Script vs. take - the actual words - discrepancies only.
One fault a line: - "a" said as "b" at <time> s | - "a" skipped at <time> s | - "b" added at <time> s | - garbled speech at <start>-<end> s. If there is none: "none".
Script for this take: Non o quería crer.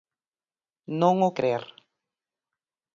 - "quería" skipped at 1.3 s